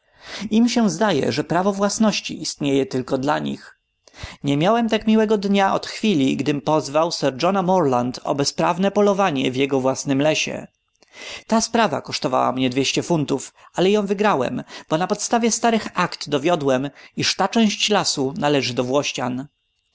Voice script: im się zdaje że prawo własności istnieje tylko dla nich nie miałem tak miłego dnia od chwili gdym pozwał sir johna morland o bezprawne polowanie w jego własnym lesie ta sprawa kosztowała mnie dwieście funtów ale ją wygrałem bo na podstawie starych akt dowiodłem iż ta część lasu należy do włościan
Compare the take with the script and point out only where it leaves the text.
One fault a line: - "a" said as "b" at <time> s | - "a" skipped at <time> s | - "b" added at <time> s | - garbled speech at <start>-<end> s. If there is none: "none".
none